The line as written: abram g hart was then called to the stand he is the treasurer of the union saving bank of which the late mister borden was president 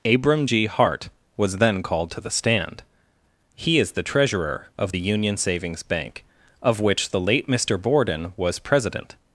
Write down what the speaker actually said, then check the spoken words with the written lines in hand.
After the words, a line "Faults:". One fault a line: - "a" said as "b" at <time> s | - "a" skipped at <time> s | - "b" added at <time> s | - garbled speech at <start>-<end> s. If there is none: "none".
abram g hart was then called to the stand he is the treasurer of the union savings bank of which the late mister borden was president
Faults:
- "saving" said as "savings" at 5.4 s